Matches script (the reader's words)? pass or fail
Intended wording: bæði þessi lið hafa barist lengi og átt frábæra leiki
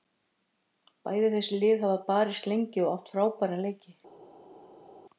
pass